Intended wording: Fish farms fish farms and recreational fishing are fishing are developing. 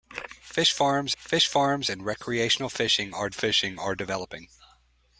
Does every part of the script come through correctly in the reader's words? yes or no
yes